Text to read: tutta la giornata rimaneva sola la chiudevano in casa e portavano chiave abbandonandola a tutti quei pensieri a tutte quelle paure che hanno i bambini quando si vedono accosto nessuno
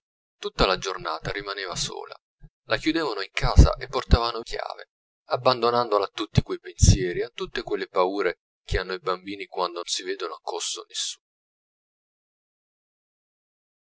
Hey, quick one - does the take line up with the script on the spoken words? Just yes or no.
yes